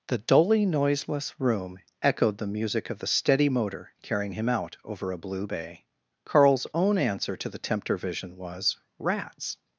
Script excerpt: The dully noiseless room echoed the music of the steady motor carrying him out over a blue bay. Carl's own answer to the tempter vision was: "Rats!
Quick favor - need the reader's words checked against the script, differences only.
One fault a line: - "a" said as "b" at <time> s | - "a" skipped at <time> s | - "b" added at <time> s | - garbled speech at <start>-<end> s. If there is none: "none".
none